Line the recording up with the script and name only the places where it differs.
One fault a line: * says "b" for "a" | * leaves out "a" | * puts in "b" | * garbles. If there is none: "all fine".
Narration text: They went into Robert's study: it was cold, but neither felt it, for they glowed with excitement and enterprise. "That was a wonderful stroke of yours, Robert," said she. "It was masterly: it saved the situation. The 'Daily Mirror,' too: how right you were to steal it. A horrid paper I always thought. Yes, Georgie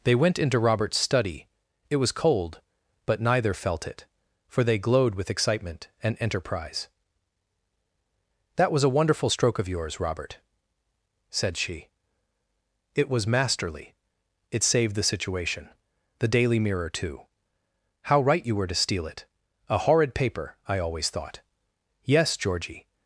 all fine